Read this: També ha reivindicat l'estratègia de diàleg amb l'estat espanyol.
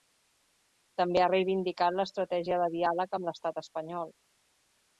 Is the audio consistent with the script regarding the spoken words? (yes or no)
yes